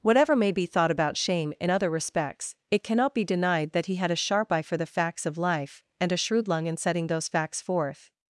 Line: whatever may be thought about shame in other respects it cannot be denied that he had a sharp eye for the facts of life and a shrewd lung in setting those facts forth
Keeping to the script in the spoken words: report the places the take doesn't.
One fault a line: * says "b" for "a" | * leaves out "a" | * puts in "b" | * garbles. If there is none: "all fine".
all fine